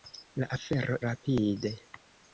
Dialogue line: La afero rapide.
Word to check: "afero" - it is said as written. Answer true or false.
true